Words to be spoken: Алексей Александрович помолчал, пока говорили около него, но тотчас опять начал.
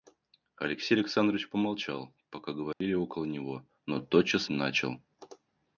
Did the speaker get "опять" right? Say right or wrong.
wrong